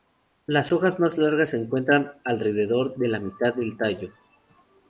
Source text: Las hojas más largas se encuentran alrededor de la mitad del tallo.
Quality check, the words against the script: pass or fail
pass